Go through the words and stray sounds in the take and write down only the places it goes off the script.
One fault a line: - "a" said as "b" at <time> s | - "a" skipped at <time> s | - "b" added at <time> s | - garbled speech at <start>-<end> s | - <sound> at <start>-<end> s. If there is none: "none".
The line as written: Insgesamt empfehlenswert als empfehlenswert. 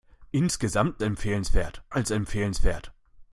none